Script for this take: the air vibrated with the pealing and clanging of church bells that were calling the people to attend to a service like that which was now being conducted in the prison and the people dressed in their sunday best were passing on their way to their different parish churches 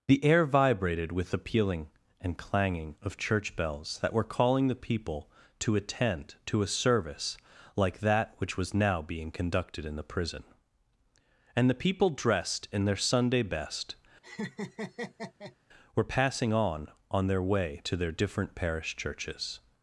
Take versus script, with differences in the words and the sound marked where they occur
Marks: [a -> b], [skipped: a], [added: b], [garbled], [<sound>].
the air vibrated with the pealing and clanging of church bells that were calling the people to attend to a service like that which was now being conducted in the prison and the people dressed in their sunday best [laugh] were passing on [added: on] their way to their different parish churches